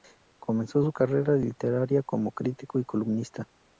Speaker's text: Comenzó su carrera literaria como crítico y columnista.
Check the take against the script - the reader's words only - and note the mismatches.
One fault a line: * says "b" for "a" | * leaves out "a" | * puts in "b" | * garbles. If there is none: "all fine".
all fine